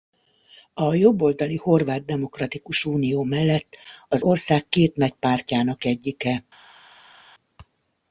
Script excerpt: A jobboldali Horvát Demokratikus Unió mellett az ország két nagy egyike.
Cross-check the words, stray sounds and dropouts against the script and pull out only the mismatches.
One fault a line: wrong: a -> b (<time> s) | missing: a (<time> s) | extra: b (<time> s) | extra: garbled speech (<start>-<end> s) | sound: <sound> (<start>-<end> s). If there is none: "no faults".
extra: pártjának (5.1 s)